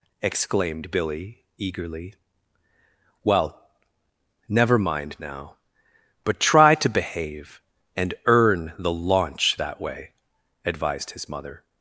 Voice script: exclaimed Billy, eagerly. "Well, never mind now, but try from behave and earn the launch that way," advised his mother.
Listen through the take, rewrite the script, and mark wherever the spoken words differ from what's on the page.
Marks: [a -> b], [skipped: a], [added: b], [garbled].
exclaimed Billy, eagerly. "Well, never mind now, but try [from -> to] behave and earn the launch that way," advised his mother.